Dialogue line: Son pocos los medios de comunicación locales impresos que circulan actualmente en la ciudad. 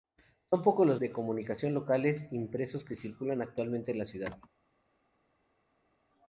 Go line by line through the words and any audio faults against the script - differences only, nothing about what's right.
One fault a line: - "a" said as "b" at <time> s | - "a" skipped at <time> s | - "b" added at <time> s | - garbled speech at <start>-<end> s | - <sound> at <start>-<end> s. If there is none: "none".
- "medios" skipped at 1.0 s